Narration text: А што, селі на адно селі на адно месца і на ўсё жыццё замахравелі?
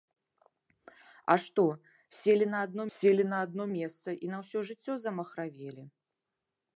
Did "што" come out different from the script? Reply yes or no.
no